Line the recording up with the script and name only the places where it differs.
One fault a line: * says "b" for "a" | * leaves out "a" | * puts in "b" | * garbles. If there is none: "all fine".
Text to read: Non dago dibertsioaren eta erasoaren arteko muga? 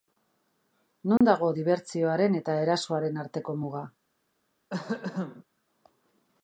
all fine